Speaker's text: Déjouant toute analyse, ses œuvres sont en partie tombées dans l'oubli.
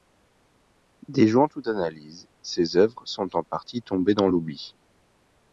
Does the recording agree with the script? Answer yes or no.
yes